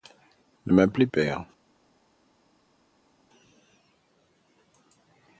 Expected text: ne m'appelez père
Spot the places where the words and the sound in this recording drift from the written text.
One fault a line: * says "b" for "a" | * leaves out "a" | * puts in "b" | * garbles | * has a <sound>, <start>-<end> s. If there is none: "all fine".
all fine